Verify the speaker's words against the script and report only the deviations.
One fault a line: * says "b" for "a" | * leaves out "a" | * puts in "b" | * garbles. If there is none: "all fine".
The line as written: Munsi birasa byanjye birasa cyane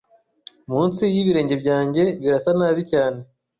* says "y'ibirenge" for "birasa"
* puts in "nabi"